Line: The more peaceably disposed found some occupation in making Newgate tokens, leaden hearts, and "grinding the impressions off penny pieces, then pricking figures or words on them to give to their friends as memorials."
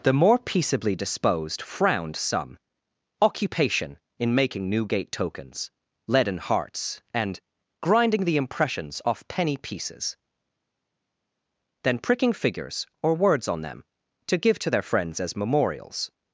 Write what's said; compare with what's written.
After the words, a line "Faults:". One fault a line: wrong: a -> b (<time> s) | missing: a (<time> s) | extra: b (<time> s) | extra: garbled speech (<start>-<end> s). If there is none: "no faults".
The more peaceably disposed frowned some occupation in making Newgate tokens, leaden hearts, and "grinding the impressions off penny pieces, then pricking figures or words on them to give to their friends as memorials."
Faults:
wrong: found -> frowned (1.6 s)